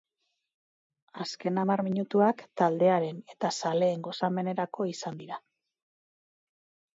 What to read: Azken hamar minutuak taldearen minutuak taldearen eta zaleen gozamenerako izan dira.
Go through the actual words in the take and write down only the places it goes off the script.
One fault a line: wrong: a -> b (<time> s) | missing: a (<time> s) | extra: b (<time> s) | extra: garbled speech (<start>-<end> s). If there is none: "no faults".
missing: minutuak taldearen (3.2 s)